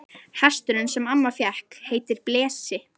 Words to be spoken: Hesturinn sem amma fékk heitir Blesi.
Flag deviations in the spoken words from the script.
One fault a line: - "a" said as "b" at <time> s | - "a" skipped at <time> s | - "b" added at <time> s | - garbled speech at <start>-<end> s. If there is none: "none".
none